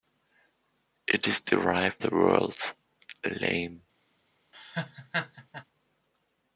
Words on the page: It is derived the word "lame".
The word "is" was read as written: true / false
true